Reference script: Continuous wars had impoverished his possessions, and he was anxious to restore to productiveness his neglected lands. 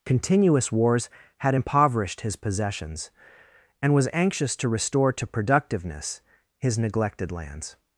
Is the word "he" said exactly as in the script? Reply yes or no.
no